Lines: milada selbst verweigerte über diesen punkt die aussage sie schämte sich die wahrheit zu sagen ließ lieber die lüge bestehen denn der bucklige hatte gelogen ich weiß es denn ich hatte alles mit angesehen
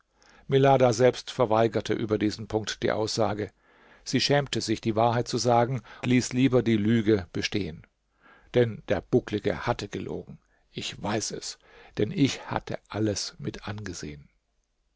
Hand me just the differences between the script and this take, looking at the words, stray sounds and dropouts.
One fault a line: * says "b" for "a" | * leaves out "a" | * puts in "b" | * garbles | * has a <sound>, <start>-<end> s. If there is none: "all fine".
all fine